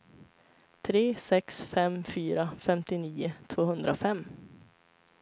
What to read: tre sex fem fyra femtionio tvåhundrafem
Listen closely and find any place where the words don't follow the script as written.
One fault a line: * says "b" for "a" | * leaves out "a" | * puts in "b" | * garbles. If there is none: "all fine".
all fine